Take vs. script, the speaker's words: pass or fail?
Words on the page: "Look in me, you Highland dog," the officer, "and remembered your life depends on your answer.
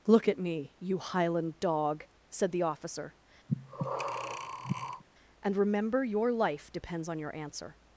fail